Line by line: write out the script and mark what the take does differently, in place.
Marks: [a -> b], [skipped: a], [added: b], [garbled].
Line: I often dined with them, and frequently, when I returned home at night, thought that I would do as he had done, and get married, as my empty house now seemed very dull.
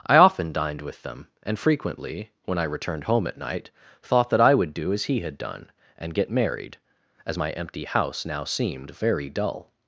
I often dined with them, and frequently, when I returned home at night, thought that I would do as he had done, and get married, as my empty house now seemed very dull.